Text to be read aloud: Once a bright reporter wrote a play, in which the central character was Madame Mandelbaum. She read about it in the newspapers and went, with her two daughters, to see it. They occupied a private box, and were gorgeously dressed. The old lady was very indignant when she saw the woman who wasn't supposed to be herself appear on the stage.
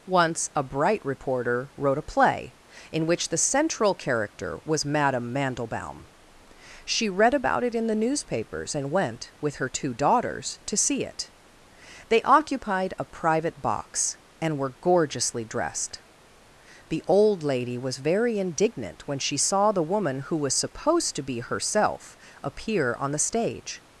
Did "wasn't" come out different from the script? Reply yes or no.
yes